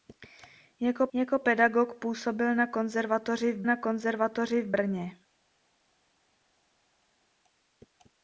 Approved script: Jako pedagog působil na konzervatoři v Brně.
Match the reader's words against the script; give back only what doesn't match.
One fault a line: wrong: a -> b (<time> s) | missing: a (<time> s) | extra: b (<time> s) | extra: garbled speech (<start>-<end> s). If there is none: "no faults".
extra: jako (1.1 s)
extra: na konzervatoři v (3.6 s)